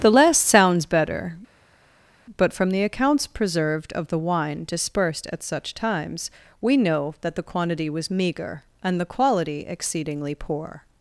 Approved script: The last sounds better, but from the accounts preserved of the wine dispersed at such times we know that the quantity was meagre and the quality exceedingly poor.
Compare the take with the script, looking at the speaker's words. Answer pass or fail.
pass